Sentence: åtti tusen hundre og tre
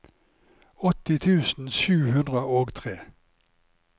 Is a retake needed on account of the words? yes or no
yes